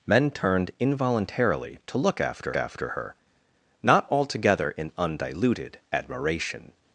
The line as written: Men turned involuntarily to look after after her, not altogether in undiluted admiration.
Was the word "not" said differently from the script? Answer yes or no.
no